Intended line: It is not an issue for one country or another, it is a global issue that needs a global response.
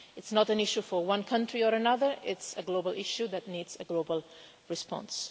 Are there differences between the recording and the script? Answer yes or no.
no